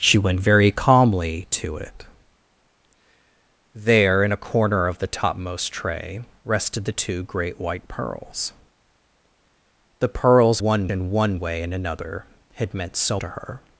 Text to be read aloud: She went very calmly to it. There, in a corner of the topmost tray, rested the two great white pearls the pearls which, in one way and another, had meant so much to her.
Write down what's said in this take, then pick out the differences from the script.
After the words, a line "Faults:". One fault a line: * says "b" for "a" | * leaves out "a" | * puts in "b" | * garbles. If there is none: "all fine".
She went very calmly to it. There, in a corner of the topmost tray, rested the two great white pearls the pearls one, in one way and another, had meant so to her.
Faults:
* says "one" for "which"
* leaves out "much"